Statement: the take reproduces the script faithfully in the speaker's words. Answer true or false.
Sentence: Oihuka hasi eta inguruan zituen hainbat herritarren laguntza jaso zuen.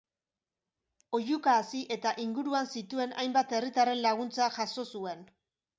true